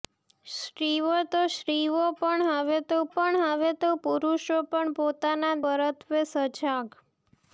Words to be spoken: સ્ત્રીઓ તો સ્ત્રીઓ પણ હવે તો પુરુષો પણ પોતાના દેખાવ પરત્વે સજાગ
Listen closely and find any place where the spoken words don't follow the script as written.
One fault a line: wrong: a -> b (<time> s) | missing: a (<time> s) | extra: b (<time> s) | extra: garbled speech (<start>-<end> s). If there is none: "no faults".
extra: પણ હવે તો (3.1 s)
missing: દેખાવ (5.6 s)